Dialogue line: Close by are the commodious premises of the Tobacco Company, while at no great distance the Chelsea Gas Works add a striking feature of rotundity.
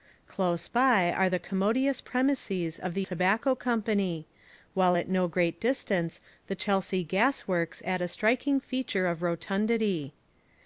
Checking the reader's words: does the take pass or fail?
pass